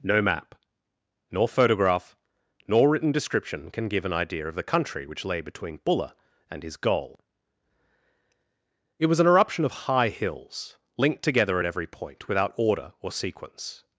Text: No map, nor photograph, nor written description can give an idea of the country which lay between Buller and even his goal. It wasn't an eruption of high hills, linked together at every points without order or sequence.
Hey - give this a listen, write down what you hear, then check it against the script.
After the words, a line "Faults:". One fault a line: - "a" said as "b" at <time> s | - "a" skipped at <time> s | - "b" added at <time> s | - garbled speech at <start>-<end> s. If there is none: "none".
No map, nor photograph, nor written description can give an idea of the country which lay between Buller and his goal. It was an eruption of high hills, linked together at every point without order or sequence.
Faults:
- "even" skipped at 6.6 s
- "wasn't" said as "was" at 9.1 s
- "points" said as "point" at 11.9 s